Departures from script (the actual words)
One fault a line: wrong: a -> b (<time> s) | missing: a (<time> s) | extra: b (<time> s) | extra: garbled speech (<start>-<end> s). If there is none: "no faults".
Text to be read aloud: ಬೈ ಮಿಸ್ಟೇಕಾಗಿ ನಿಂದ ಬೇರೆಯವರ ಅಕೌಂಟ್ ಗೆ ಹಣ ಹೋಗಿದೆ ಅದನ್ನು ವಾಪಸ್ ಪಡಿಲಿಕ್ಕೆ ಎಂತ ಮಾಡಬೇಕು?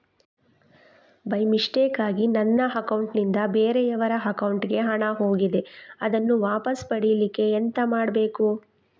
extra: ನನ್ನ ಅಕೌಂಟ್ (2.3 s)